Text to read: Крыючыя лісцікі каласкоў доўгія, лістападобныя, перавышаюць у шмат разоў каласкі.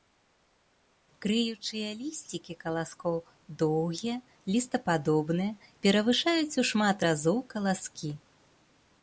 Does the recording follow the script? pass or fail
pass